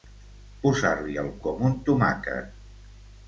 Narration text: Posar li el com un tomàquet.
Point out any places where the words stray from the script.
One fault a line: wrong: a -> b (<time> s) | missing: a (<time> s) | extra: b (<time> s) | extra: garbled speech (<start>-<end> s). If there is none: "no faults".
no faults